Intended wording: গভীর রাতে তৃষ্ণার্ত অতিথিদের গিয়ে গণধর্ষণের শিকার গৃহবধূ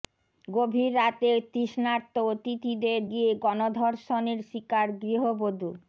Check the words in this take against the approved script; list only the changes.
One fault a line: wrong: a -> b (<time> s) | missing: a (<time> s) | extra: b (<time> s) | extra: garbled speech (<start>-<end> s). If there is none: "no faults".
no faults